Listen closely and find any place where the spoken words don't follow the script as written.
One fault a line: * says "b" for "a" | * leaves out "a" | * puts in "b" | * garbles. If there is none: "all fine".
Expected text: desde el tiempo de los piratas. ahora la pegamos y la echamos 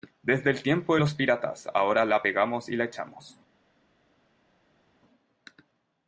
all fine